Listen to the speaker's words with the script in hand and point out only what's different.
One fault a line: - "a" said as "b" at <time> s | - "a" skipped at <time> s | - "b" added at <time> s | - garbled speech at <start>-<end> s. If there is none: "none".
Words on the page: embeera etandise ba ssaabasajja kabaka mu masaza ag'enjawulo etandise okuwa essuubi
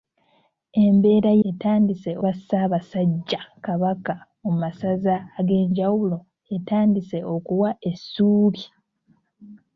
none